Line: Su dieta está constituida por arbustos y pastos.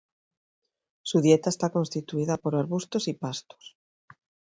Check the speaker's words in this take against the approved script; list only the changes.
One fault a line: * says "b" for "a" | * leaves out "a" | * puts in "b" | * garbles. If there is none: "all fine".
all fine